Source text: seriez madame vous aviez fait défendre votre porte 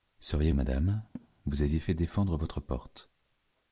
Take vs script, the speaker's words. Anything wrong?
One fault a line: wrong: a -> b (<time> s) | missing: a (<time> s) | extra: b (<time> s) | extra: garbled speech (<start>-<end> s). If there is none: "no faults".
no faults